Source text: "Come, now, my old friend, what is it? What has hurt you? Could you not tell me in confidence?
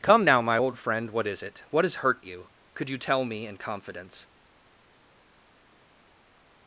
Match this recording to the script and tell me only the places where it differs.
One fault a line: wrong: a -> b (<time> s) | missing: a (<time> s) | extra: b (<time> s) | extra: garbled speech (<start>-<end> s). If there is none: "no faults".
missing: not (3.0 s)